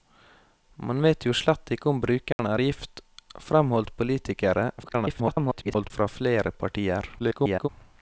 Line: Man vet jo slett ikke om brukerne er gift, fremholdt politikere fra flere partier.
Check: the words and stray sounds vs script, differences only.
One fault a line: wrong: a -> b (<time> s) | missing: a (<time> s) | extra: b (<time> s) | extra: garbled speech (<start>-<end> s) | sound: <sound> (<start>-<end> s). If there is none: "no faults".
sound: dropout (2.3-2.4 s)
extra: garbled speech (4.8-5.9 s)
extra: garbled speech (7.2-7.7 s)